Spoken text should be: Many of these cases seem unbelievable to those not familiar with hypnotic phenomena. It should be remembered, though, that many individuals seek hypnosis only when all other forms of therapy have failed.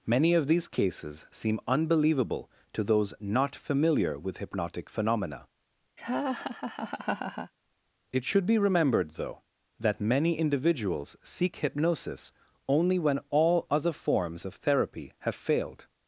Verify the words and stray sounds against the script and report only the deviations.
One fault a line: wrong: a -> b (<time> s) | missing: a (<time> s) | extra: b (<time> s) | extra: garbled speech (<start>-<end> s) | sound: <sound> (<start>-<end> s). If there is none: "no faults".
sound: laugh (6.0-7.5 s)